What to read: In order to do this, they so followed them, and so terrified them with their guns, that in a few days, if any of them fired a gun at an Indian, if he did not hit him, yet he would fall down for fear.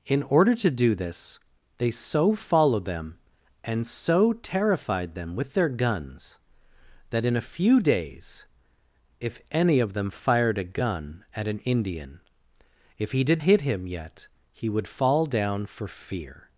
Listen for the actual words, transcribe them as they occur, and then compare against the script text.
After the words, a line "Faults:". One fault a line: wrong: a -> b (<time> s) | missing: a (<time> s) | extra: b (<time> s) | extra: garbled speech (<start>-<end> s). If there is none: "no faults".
In order to do this, they so followed them, and so terrified them with their guns, that in a few days, if any of them fired a gun at an Indian, if he did hit him, yet he would fall down for fear.
Faults:
missing: not (13.4 s)